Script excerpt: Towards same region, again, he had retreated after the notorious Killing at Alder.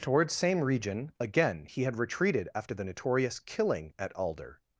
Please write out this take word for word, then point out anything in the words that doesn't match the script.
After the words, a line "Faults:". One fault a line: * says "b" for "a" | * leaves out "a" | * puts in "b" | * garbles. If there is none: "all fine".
Towards same region, again, he had retreated after the notorious Killing at Alder.
Faults:
all fine